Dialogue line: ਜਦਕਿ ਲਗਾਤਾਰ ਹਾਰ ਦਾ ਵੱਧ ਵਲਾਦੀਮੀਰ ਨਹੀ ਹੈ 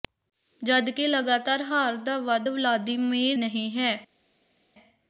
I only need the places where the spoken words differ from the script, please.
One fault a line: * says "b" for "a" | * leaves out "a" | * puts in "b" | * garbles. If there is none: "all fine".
all fine